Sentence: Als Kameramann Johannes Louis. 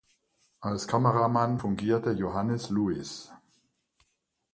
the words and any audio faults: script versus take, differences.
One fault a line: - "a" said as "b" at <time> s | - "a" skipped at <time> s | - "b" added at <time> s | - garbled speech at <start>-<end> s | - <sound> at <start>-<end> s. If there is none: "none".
- "fungierte" added at 1.5 s